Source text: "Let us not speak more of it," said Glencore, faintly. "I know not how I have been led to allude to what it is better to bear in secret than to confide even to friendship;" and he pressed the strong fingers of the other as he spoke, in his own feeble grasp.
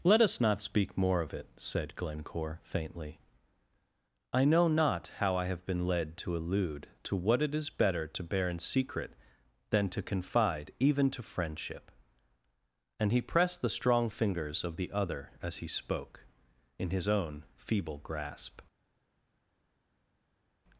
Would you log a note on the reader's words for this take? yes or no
no